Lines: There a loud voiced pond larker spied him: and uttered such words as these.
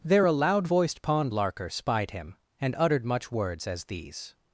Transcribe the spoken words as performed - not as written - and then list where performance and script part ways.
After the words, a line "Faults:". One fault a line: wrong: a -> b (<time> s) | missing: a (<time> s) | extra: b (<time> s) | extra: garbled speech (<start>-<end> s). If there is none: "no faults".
There a loud voiced pond larker spied him: and uttered much words as these.
Faults:
wrong: such -> much (3.0 s)